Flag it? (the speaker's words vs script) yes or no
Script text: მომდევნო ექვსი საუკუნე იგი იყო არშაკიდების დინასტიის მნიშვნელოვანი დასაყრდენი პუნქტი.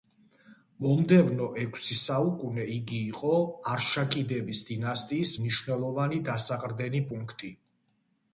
no